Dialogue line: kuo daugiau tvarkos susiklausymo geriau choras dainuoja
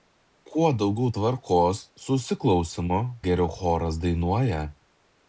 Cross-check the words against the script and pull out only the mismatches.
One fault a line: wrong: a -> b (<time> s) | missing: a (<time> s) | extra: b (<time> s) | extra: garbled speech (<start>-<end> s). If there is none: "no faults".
no faults